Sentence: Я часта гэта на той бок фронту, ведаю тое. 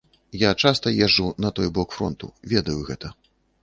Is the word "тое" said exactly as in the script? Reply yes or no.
no